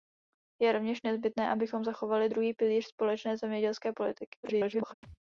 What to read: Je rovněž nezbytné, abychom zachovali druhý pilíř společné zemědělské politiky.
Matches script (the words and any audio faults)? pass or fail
fail